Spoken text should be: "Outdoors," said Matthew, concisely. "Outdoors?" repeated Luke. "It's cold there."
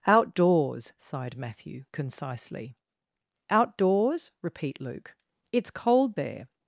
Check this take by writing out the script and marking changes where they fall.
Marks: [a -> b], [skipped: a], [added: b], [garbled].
"Outdoors," [said -> sighed] Matthew, concisely. "Outdoors?" [repeated -> repeat] Luke. "It's cold there."